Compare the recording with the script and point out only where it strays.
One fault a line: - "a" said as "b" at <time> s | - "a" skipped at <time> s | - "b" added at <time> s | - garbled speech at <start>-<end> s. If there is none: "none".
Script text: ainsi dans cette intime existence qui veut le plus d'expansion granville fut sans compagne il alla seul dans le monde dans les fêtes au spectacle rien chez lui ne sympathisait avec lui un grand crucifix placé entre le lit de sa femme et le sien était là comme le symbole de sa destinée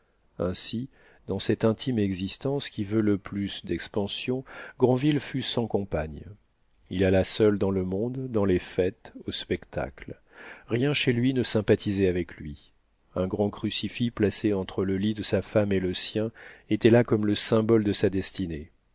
none